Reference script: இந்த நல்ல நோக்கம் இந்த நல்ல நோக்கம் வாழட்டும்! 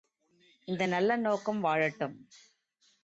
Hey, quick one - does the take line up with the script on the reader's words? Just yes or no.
no